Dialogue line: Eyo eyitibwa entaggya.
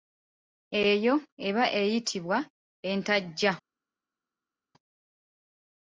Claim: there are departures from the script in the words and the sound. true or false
true